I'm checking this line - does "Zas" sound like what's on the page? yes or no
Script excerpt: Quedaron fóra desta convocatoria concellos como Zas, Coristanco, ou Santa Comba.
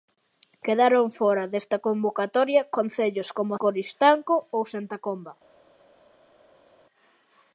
no